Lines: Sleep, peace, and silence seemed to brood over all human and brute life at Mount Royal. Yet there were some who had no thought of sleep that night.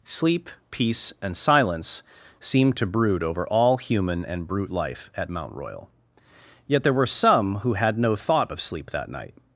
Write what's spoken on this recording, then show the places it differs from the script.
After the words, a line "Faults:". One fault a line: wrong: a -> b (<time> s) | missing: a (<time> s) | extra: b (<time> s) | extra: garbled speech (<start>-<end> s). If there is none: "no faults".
Sleep, peace, and silence seemed to brood over all human and brute life at Mount Royal. Yet there were some who had no thought of sleep that night.
Faults:
no faults